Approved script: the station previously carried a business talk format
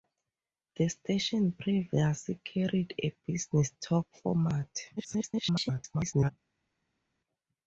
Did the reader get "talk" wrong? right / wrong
right